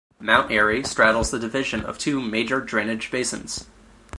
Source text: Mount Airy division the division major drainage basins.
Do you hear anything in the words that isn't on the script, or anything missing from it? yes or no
yes